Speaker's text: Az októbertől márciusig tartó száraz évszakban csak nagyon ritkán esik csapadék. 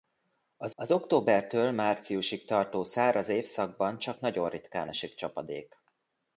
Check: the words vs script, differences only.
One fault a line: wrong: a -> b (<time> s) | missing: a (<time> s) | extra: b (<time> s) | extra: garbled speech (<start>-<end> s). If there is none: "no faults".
extra: az (0.7 s)